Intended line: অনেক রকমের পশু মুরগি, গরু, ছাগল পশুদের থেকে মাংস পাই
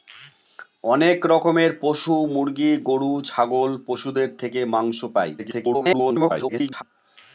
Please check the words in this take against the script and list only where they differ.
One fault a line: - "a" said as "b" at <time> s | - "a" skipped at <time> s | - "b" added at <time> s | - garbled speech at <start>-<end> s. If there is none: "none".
- garbled speech at 5.4-6.8 s